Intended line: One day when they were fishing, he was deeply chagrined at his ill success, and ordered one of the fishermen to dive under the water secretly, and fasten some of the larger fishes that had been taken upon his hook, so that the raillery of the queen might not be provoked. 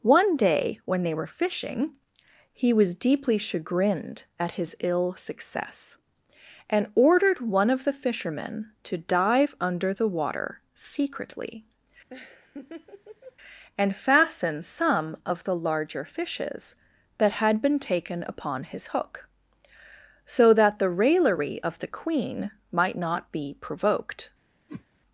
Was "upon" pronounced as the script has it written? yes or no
yes